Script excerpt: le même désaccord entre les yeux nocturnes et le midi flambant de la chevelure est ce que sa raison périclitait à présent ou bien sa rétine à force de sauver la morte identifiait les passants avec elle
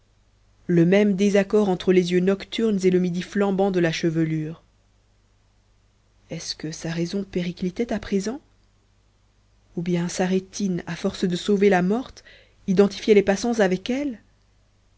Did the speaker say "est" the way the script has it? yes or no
yes